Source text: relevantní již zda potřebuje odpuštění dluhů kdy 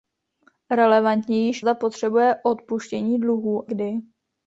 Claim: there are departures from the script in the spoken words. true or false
false